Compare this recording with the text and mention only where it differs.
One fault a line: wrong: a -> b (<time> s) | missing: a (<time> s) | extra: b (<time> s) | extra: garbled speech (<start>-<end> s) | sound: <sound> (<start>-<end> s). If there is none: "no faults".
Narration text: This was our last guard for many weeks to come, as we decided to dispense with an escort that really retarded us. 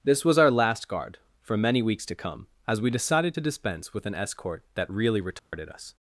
sound: dropout (5.4-5.5 s)